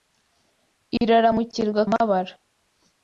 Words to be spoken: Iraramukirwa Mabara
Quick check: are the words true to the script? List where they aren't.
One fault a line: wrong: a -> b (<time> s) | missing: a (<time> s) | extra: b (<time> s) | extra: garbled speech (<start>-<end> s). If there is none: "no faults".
no faults